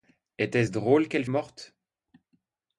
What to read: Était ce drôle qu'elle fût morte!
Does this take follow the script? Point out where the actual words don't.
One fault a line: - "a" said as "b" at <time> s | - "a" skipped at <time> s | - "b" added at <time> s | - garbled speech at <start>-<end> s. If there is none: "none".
- "fût" skipped at 1.2 s